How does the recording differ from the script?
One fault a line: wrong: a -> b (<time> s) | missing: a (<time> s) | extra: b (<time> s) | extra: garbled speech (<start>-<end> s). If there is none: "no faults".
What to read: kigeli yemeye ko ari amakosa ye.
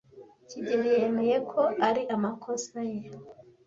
no faults